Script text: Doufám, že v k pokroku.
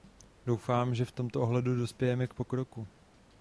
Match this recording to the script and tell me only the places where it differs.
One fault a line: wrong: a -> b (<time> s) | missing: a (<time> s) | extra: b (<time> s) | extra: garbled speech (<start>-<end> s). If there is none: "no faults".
extra: tomto ohledu dospějeme (1.1 s)